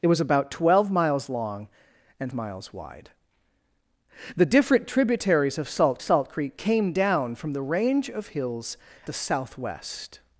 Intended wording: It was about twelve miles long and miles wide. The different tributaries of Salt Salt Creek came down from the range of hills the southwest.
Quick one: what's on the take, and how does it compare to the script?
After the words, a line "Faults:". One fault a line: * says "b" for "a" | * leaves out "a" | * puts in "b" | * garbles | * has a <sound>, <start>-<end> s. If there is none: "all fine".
It was about twelve miles long and miles wide. The different tributaries of Salt Salt Creek came down from the range of hills the southwest.
Faults:
all fine